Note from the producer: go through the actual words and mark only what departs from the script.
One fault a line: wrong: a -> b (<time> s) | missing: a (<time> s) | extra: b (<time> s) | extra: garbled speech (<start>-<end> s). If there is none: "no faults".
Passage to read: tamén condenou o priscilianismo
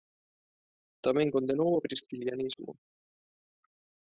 no faults